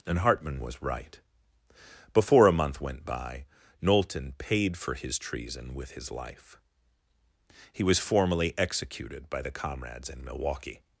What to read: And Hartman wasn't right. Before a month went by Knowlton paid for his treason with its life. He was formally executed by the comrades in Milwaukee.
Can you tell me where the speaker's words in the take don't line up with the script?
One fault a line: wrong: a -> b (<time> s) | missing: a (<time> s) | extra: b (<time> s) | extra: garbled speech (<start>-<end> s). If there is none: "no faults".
wrong: wasn't -> was (0.6 s)
wrong: its -> his (5.9 s)